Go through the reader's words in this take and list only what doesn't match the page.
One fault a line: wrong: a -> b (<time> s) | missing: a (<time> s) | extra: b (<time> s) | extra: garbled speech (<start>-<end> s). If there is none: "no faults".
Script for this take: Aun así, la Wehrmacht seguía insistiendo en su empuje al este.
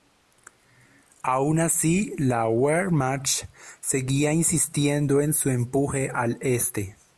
no faults